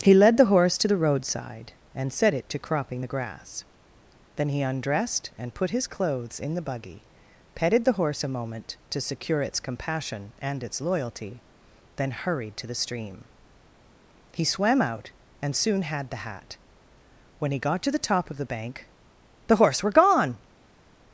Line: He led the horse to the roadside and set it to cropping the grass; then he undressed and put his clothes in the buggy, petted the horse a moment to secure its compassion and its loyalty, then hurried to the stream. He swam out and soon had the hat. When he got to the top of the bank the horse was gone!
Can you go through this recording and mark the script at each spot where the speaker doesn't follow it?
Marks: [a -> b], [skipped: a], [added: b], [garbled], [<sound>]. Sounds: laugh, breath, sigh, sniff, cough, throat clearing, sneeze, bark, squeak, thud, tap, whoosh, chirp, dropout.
He led the horse to the roadside and set it to cropping the grass; then he undressed and put his clothes in the buggy, petted the horse a moment to secure its compassion and its loyalty, then hurried to the stream. He swam out and soon had the hat. When he got to the top of the bank the horse [was -> were] gone!